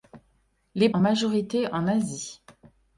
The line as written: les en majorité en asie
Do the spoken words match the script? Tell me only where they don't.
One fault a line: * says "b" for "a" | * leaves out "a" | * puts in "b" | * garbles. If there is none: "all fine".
all fine